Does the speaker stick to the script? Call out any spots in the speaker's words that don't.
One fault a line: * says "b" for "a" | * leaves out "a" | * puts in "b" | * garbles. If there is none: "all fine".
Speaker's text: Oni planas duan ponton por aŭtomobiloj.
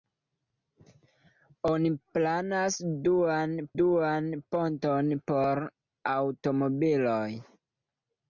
* puts in "duan"